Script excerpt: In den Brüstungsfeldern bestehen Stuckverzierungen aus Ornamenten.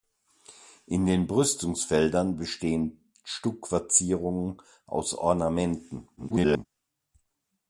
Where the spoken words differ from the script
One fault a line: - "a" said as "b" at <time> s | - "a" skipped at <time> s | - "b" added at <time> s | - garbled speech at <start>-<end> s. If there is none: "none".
- garbled speech at 6.2-6.7 s